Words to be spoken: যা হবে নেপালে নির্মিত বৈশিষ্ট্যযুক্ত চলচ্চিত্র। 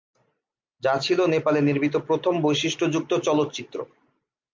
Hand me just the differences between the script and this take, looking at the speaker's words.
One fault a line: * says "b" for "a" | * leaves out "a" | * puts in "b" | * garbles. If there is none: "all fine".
* says "ছিল" for "হবে"
* puts in "প্রথম"